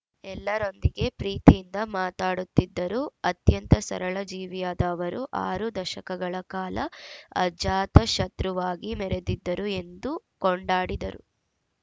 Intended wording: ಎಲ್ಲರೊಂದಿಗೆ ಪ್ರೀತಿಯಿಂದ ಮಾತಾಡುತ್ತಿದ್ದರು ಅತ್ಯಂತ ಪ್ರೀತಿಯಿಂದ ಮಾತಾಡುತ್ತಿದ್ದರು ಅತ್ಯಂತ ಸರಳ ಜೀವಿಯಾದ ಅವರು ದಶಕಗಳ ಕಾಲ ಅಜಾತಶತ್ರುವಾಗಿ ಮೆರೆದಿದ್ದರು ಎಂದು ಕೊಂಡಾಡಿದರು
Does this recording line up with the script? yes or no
no